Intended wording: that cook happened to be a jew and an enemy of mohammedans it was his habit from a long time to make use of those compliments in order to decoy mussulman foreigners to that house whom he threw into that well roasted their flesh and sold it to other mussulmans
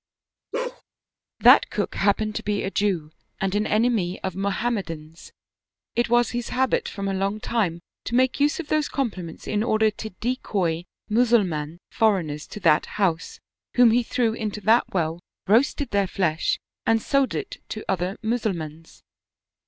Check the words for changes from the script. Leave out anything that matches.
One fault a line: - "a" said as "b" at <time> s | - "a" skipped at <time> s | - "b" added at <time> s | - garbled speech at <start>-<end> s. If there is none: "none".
none